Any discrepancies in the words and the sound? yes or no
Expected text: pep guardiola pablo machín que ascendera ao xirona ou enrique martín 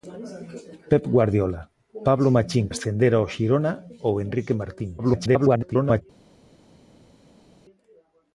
yes